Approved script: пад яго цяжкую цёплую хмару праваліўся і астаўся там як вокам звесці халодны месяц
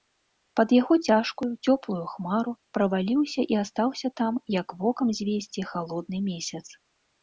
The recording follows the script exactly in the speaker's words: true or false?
true